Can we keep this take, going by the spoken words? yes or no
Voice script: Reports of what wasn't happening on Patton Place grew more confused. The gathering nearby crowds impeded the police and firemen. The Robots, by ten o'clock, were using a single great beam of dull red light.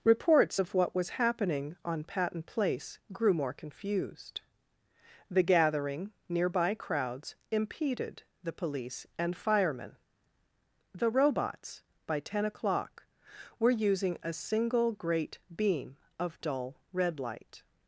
no